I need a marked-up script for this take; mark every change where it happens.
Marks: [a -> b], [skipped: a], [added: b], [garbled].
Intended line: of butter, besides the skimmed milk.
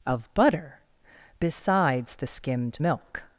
of butter, besides the skimmed milk.